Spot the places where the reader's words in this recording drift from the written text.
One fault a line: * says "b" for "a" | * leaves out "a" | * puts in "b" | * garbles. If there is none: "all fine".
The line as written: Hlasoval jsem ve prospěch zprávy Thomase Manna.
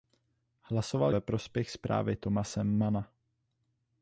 * leaves out "jsem"